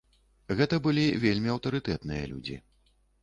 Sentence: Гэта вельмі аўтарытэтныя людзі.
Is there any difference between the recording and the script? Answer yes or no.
yes